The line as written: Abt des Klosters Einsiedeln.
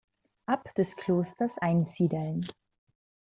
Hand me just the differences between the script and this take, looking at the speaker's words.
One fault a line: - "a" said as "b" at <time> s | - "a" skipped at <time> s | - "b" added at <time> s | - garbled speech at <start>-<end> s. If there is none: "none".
none